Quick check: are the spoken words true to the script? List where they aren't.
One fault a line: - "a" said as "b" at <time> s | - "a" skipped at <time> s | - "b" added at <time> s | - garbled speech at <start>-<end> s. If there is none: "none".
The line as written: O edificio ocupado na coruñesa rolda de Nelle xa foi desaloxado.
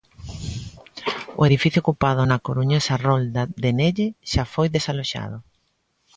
none